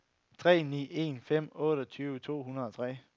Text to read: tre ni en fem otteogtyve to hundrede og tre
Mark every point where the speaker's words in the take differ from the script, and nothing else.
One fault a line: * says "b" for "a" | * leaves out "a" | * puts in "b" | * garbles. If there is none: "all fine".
all fine